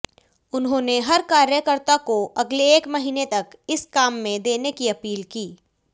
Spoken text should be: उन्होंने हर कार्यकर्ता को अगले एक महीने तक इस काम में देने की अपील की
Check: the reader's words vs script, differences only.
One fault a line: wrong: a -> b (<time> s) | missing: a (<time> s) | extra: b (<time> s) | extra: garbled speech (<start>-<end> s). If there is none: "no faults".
no faults